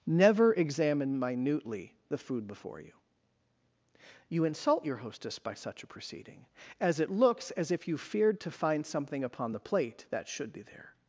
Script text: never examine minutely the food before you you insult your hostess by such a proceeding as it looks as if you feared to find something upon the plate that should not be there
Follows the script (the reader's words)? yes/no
no